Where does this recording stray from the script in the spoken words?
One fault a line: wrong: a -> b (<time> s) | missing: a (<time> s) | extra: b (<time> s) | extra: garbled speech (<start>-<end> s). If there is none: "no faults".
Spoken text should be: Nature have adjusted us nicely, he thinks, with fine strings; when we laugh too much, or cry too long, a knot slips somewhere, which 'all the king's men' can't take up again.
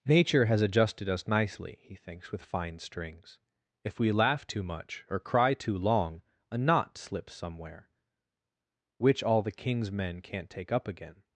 wrong: have -> has (0.5 s)
wrong: when -> if (3.8 s)